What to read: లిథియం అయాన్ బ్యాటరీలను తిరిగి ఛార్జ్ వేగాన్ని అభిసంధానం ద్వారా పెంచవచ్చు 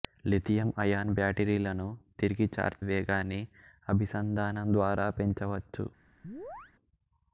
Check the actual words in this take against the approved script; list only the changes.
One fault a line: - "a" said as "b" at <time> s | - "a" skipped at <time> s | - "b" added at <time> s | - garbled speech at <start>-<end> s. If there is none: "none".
none